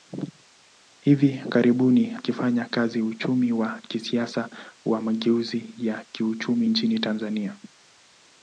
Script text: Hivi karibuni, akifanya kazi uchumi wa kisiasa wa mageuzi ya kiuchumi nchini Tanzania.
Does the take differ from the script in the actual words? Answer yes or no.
no